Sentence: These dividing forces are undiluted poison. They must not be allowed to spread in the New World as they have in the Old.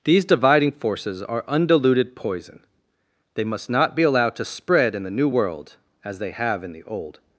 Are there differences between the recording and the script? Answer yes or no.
no